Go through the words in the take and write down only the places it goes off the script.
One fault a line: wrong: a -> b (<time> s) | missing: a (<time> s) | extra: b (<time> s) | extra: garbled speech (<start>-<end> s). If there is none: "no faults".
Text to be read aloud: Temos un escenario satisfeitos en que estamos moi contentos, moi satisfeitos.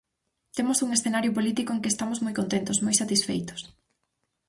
wrong: satisfeitos -> político (1.4 s)